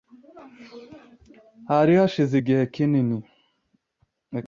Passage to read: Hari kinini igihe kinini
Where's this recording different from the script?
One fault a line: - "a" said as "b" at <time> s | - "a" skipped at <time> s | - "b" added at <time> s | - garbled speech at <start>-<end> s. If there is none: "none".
- "kinini" said as "hashize" at 2.0 s